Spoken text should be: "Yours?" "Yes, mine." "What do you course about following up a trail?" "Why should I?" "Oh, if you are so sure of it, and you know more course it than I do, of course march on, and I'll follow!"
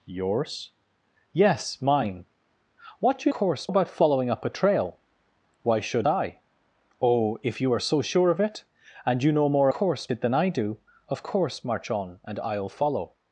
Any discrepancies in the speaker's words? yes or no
no